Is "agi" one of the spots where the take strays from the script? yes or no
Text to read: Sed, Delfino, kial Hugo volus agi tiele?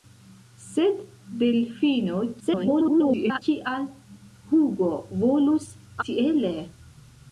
yes